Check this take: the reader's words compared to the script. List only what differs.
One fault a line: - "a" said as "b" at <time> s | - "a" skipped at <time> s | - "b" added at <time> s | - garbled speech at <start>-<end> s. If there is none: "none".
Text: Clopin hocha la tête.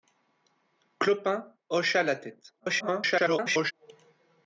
- garbled speech at 2.6-3.7 s